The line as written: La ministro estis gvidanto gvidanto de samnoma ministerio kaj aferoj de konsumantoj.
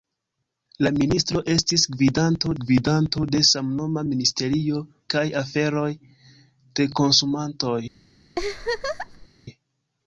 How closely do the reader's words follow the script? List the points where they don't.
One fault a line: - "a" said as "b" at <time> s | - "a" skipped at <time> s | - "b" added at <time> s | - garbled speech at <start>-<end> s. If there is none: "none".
none